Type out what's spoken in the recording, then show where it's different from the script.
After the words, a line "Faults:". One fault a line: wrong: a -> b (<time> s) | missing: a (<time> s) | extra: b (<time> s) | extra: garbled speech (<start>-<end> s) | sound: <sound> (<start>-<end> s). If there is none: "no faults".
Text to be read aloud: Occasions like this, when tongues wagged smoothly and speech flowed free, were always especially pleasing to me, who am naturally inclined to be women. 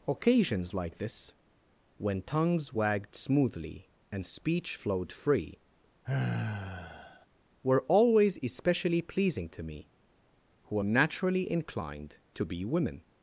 Occasions like this, when tongues wagged smoothly and speech flowed free, were always especially pleasing to me, who am naturally inclined to be women.
Faults:
sound: sigh (6.0-7.3 s)